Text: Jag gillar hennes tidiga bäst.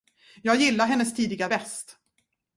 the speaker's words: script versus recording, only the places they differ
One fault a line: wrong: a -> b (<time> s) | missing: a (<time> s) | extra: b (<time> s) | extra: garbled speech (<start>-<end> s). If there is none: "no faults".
no faults